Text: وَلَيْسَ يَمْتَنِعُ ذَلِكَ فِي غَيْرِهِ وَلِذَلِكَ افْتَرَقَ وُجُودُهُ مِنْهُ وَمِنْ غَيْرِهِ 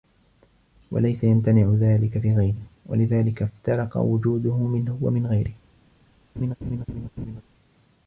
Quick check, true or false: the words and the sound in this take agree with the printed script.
false